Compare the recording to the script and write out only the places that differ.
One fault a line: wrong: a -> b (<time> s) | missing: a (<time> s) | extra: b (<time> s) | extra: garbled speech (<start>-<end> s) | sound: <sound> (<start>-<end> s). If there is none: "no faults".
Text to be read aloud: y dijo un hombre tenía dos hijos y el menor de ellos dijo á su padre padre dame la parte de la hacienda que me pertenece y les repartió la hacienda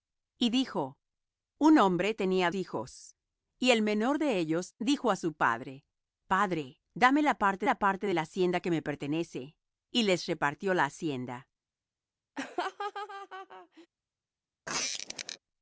missing: dos (2.5 s)
extra: la parte (7.6 s)
sound: laugh (12.4-13.9 s)
sound: squeak (14.7-15.4 s)